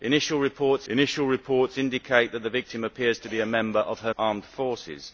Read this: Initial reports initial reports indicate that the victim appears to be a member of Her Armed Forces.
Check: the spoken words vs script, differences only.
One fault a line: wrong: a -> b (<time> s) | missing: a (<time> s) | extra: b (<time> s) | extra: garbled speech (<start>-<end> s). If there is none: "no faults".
no faults